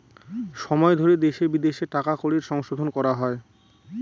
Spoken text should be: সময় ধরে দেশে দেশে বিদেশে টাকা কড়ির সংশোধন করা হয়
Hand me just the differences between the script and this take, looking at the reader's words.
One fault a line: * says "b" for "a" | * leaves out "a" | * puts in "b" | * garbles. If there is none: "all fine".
* leaves out "দেশে"